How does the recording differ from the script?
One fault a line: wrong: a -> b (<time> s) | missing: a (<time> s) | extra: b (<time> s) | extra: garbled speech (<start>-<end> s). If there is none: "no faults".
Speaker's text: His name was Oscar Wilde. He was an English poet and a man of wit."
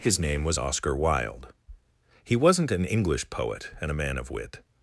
wrong: was -> wasn't (2.4 s)